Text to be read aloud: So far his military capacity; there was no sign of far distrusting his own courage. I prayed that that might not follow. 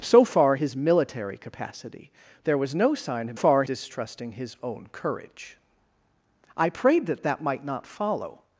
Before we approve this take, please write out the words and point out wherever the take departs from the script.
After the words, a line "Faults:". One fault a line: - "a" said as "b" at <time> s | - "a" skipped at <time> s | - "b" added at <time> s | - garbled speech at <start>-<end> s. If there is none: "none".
So far his military capacity; there was no sign of far distrusting his own courage. I prayed that that might not follow.
Faults:
none